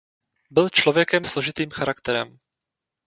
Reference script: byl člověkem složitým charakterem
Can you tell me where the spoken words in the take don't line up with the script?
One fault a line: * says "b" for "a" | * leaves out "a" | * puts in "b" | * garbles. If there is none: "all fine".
all fine